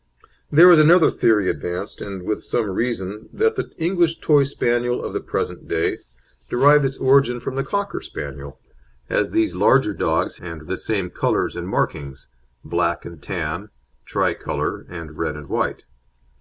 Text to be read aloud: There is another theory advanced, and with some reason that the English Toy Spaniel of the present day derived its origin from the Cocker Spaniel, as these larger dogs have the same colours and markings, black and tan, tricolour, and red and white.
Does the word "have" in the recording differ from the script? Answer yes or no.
yes